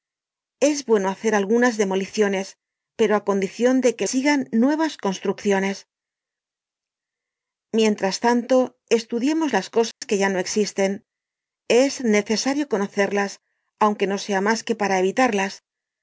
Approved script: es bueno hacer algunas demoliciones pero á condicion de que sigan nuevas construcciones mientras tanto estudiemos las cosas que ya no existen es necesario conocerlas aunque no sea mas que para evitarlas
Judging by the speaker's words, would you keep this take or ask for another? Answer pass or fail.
pass